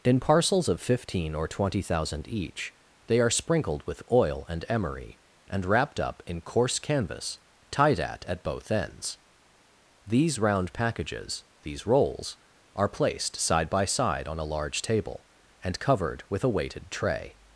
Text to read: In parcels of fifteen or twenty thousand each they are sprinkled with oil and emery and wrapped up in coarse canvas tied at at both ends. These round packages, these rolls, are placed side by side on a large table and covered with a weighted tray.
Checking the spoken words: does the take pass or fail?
pass